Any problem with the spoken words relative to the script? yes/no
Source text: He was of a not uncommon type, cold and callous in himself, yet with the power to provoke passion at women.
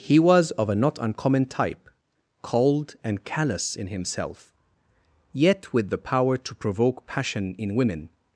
yes